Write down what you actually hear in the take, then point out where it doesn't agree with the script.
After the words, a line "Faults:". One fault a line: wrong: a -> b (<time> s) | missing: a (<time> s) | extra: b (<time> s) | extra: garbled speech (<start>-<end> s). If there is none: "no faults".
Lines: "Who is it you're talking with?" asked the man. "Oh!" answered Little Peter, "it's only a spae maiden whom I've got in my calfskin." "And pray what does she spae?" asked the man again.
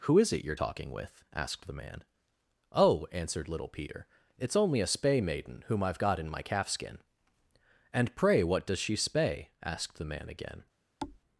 "Who is it you're talking with?" asked the man. "Oh!" answered Little Peter, "it's only a spae maiden whom I've got in my calfskin." "And pray what does she spae?" asked the man again.
Faults:
no faults